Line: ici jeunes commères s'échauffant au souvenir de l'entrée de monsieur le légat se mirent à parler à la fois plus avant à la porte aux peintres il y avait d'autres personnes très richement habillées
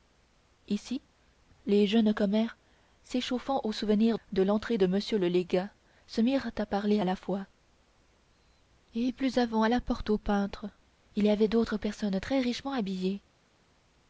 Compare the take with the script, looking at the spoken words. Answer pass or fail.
fail